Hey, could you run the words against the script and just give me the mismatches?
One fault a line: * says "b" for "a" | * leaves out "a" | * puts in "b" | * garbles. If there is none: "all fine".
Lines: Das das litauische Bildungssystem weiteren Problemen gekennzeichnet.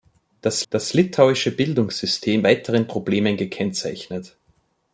all fine